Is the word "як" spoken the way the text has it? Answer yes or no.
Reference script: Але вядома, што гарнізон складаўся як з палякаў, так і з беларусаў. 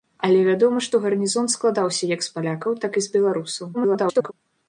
yes